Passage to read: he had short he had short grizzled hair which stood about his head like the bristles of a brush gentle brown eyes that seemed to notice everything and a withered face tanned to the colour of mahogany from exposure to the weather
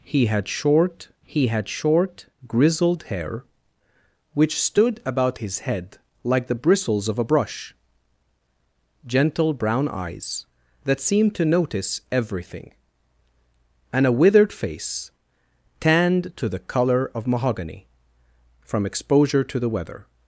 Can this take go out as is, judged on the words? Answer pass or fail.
pass